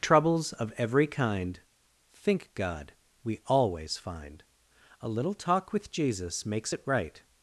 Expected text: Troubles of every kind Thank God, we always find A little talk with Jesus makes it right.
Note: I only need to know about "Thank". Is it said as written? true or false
false